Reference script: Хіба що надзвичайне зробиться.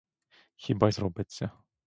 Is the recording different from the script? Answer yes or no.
yes